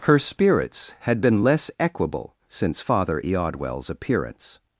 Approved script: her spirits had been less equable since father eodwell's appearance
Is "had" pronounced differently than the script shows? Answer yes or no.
no